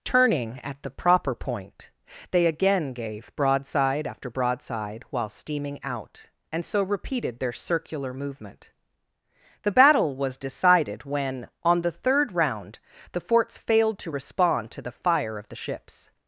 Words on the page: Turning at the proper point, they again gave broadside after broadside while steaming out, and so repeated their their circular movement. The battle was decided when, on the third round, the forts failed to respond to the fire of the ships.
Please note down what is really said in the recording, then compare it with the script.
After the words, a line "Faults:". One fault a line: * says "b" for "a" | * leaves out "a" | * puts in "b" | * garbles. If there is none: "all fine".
Turning at the proper point, they again gave broadside after broadside while steaming out, and so repeated their circular movement. The battle was decided when, on the third round, the forts failed to respond to the fire of the ships.
Faults:
* leaves out "their"